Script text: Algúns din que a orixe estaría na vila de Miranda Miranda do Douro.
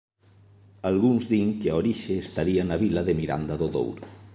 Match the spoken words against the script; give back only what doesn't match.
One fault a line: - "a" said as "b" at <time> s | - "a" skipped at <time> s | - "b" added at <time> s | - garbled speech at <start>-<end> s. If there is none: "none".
- "Miranda" skipped at 3.5 s